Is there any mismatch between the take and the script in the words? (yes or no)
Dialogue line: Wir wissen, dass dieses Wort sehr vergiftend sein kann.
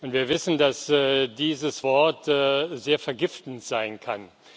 no